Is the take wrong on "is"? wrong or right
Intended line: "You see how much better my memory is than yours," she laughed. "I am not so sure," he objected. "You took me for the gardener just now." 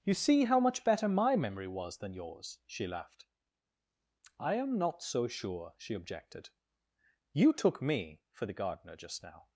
wrong